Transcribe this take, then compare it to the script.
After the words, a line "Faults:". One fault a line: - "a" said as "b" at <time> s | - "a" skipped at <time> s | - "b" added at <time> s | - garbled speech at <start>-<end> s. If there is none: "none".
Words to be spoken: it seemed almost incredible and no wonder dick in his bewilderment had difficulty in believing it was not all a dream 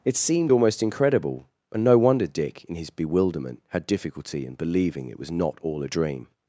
it seemed almost incredible and no wonder dick in his bewilderment had difficulty in believing it was not all a dream
Faults:
none